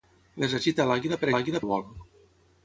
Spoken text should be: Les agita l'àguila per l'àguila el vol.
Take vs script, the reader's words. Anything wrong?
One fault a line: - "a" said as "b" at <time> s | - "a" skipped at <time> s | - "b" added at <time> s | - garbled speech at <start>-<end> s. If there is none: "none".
none